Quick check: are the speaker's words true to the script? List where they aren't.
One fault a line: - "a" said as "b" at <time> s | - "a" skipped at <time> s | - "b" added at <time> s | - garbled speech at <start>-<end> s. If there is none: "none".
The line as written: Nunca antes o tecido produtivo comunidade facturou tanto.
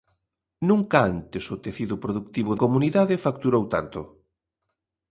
none